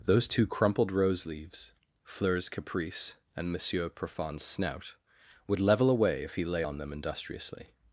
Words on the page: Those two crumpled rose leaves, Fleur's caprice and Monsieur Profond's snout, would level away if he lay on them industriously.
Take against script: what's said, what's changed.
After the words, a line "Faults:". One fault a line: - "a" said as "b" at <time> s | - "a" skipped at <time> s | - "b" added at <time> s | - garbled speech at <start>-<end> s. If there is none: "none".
Those two crumpled rose leaves, Fleur's caprice and Monsieur Profond's snout, would level away if he lay on them industriously.
Faults:
none